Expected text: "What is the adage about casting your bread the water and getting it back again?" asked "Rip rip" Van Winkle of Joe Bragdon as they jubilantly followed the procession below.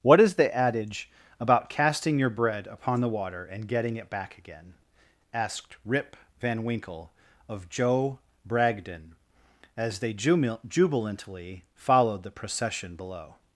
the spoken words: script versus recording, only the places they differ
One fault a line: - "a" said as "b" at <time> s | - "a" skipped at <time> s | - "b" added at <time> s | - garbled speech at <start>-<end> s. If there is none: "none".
- "upon" added at 2.7 s
- "rip" skipped at 6.2 s